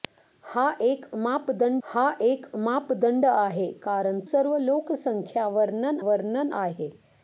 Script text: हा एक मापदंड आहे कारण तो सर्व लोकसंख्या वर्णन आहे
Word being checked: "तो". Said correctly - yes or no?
no